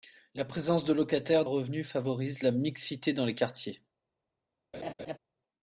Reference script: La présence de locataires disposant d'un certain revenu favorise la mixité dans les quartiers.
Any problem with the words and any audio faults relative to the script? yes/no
yes